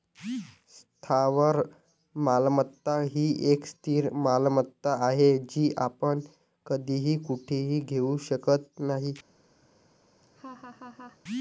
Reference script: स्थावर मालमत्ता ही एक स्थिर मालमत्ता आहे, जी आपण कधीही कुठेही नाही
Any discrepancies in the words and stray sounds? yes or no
yes